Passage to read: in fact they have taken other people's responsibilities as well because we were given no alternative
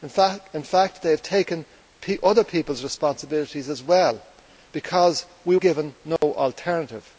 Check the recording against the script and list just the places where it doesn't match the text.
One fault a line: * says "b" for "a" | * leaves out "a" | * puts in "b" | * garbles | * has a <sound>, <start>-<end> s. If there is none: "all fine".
* leaves out "were"
* has a dropout, 6.2-6.2 s